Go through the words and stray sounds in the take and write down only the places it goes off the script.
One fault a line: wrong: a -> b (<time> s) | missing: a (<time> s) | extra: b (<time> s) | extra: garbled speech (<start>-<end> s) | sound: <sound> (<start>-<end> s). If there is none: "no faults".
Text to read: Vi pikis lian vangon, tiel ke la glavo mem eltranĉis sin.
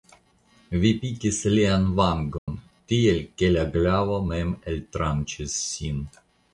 sound: dropout (2.4-2.5 s)